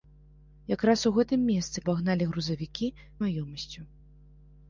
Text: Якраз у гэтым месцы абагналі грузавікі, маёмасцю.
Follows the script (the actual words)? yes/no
yes